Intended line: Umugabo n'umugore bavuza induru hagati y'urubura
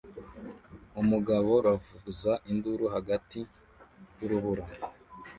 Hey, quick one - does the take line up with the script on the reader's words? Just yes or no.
no